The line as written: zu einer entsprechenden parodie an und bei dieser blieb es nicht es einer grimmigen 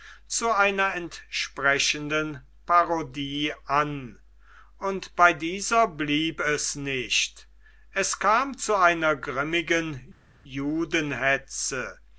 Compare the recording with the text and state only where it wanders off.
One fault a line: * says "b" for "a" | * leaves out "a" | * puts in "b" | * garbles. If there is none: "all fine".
* puts in "kam zu"